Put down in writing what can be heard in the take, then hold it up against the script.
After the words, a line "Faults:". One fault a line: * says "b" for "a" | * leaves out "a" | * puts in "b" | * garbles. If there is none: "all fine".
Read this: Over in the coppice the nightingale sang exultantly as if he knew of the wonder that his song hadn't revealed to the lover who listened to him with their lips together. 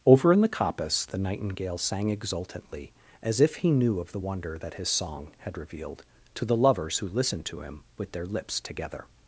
Over in the coppice the nightingale sang exultantly as if he knew of the wonder that his song had revealed to the lovers who listened to him with their lips together.
Faults:
* says "had" for "hadn't"
* says "lovers" for "lover"